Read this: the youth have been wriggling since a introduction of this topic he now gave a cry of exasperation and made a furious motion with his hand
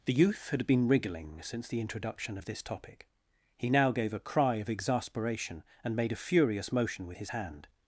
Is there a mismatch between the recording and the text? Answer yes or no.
yes